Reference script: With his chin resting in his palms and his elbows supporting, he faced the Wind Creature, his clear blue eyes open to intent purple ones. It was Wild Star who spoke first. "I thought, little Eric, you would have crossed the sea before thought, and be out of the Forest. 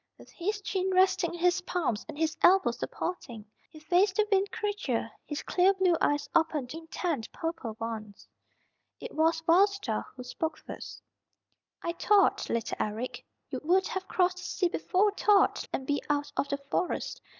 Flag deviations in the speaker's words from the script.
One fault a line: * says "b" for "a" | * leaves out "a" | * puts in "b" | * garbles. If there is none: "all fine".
all fine